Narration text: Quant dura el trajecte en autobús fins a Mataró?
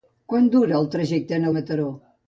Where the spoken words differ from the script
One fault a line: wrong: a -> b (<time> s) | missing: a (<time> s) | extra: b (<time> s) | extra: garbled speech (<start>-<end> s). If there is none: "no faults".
missing: autobús fins (1.5 s)